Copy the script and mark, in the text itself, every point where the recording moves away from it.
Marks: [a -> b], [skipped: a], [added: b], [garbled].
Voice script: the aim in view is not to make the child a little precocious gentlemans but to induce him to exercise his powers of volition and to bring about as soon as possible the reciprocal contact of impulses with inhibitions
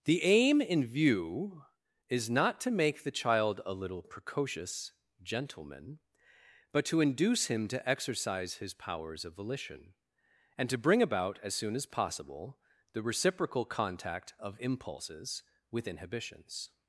the aim in view is not to make the child a little precocious [gentlemans -> gentleman] but to induce him to exercise his powers of volition and to bring about as soon as possible the reciprocal contact of impulses with inhibitions